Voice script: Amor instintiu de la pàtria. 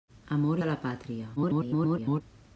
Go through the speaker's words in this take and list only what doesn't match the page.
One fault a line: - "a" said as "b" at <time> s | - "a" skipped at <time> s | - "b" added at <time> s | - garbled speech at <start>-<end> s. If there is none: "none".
- "instintiu" skipped at 0.6 s
- garbled speech at 1.4-2.2 s